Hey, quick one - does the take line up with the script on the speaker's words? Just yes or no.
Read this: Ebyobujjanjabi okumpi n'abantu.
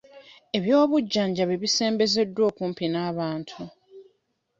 no